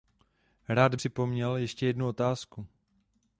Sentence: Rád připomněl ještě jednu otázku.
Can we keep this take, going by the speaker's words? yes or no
yes